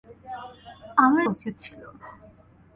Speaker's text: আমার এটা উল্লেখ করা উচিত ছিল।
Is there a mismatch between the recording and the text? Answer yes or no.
yes